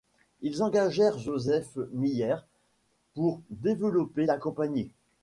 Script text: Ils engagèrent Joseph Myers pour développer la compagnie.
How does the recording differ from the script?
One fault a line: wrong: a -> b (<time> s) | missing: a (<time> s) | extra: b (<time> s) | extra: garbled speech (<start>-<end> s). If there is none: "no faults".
no faults